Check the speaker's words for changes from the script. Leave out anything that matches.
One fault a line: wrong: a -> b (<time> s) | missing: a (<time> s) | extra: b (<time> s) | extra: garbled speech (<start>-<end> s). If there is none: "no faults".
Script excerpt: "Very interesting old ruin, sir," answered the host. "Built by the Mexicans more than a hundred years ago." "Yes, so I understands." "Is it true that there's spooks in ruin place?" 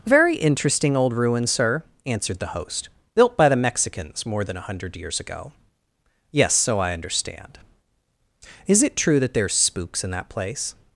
wrong: understands -> understand (6.9 s)
wrong: ruin -> that (10.1 s)